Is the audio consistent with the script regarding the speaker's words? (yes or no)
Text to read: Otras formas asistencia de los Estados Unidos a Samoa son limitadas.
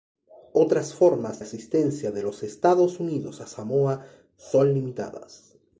yes